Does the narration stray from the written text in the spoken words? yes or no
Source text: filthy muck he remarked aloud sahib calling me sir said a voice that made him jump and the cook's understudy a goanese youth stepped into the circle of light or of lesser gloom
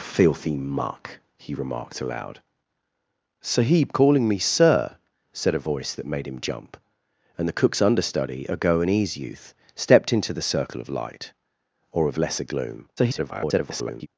yes